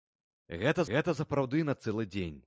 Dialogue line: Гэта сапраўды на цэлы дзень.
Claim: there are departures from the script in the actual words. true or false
true